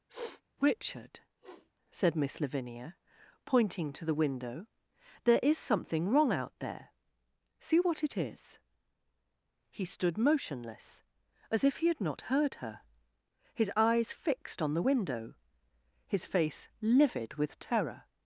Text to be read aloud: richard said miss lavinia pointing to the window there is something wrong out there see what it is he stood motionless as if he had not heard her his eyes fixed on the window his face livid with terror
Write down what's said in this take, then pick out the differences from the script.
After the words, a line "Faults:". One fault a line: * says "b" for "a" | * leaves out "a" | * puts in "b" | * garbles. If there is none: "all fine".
richard said miss lavinia pointing to the window there is something wrong out there see what it is he stood motionless as if he had not heard her his eyes fixed on the window his face livid with terror
Faults:
all fine